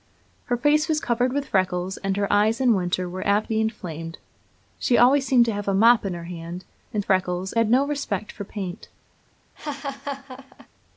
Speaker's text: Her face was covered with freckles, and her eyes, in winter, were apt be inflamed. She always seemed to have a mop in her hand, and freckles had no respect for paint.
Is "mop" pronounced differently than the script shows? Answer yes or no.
no